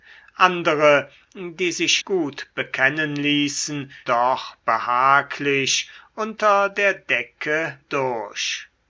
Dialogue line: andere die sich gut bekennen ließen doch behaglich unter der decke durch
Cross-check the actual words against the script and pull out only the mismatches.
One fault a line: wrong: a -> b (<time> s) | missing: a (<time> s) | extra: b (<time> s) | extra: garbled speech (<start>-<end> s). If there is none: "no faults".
no faults